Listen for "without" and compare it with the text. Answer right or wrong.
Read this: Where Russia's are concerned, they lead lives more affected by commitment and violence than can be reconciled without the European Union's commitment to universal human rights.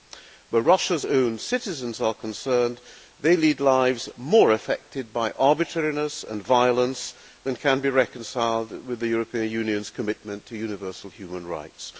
wrong